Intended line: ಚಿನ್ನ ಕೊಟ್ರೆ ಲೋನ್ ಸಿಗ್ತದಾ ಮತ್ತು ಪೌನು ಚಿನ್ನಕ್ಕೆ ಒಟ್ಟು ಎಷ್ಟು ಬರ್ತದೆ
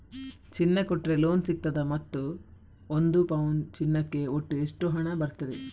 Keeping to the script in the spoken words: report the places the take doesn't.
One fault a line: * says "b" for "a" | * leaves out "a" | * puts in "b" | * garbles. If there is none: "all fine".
* puts in "ಒಂದು"
* puts in "ಹಣ"